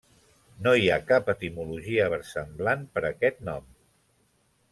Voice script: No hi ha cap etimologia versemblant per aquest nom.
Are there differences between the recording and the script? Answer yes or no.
no